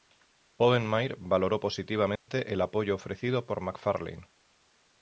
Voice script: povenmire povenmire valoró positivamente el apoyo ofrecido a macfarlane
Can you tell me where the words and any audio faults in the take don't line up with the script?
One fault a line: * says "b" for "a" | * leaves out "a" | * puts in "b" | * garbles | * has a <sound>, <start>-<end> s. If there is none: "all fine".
* leaves out "povenmire"
* has a dropout, 2.2-2.3 s
* says "por" for "a"